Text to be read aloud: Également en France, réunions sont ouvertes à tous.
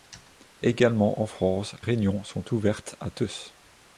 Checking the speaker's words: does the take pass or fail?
pass